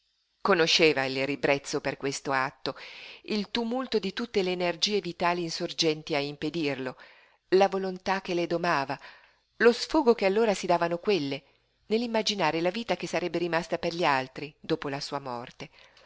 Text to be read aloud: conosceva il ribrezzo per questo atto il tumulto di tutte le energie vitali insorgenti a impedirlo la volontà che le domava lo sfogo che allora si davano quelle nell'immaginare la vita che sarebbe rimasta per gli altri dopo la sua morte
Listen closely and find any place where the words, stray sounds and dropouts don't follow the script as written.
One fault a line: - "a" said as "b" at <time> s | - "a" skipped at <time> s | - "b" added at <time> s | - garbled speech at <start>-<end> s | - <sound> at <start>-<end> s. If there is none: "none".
none